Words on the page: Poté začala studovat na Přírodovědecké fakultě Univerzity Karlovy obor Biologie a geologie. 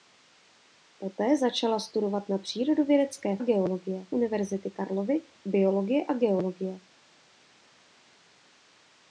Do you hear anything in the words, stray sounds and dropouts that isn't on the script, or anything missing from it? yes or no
yes